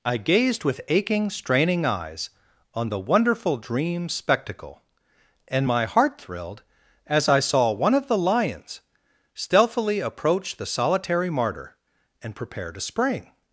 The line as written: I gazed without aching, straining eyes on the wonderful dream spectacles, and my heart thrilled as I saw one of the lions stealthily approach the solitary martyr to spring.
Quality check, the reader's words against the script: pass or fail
fail